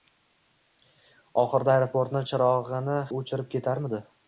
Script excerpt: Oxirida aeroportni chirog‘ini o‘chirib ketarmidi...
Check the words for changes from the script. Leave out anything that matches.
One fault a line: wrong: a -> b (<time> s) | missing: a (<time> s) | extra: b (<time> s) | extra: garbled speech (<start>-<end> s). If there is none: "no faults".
no faults